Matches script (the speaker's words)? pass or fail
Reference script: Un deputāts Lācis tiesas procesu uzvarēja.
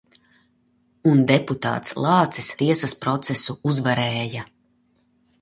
pass